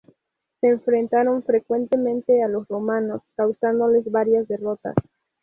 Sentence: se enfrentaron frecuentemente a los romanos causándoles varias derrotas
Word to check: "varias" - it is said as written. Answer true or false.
true